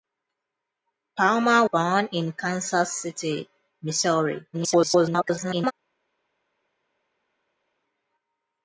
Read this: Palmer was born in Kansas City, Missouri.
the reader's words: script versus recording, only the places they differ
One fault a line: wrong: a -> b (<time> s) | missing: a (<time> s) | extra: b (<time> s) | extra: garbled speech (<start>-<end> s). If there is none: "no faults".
missing: was (1.7 s)
extra: garbled speech (4.5-5.7 s)